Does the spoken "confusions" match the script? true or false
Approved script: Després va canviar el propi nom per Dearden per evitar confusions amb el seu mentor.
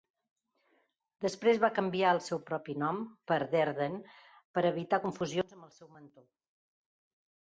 true